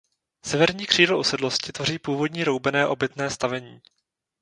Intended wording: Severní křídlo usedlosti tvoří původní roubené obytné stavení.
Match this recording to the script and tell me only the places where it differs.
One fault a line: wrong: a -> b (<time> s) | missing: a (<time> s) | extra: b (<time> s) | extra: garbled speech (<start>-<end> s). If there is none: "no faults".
no faults